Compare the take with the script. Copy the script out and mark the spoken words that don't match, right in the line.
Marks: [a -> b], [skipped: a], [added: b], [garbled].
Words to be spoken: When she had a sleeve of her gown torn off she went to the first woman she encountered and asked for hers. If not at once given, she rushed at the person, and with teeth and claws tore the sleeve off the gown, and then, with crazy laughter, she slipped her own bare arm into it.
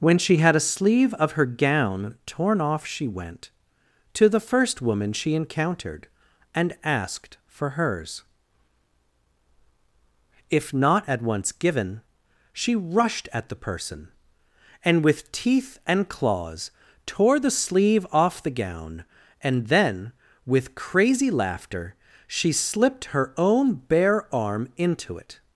When she had a sleeve of her gown torn off she went to the first woman she encountered and asked for hers. If not at once given, she rushed at the person, and with teeth and claws tore the sleeve off the gown, and then, with crazy laughter, she slipped her own bare arm into it.